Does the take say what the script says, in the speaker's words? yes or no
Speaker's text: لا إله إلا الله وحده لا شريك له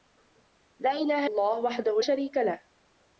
no